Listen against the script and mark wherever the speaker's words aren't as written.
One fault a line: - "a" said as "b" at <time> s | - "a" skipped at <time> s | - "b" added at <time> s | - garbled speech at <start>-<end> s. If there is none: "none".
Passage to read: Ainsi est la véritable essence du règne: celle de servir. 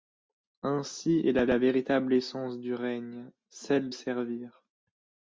- "la" added at 1.4 s
- "de" skipped at 3.9 s